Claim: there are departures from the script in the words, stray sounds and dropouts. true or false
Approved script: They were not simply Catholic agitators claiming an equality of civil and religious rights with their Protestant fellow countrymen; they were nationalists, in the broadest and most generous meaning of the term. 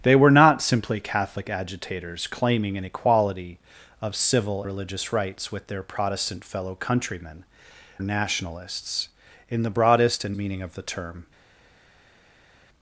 true